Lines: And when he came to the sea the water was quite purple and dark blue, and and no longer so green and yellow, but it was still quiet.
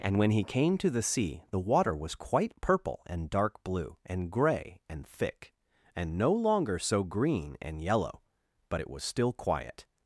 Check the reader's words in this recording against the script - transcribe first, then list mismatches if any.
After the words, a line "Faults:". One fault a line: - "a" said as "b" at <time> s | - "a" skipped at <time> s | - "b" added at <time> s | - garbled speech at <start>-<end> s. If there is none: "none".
And when he came to the sea the water was quite purple and dark blue, and grey and thick, and no longer so green and yellow, but it was still quiet.
Faults:
- "grey and thick" added at 4.3 s